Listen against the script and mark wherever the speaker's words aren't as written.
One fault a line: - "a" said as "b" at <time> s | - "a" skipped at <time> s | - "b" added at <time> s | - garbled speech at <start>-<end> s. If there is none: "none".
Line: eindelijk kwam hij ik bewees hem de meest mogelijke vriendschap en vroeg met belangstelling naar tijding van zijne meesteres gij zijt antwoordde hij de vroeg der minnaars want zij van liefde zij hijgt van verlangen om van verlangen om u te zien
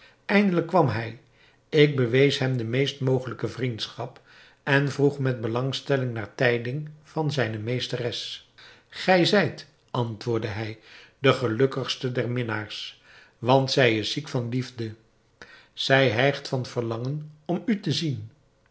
- "vroeg" said as "gelukkigste" at 11.3 s
- "is ziek" added at 14.0 s
- "van verlangen om" skipped at 17.6 s